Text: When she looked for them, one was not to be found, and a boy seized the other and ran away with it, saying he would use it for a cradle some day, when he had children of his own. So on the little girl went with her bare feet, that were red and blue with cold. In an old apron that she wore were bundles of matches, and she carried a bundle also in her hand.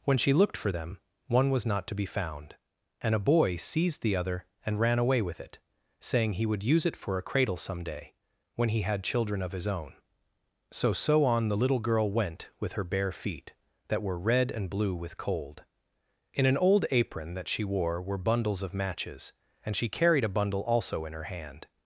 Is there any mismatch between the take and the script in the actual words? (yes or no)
yes